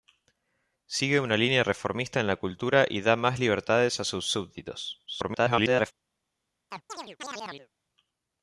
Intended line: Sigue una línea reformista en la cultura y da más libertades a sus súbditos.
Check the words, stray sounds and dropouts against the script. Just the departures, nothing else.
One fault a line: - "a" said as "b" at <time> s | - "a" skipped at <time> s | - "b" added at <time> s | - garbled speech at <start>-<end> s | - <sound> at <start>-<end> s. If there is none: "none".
- garbled speech at 5.1-5.9 s
- chirp at 6.7-7.7 s